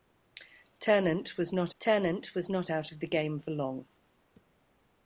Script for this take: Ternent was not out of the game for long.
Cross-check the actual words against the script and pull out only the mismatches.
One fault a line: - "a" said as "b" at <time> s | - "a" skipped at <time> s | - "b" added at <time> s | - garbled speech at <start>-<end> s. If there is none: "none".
- "ternent was not" added at 1.8 s